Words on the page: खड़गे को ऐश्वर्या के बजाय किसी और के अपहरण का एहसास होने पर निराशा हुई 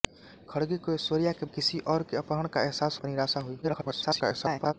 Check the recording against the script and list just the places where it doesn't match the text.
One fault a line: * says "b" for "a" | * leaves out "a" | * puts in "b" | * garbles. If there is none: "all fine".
* leaves out "बजाय"
* leaves out "होने"
* garbles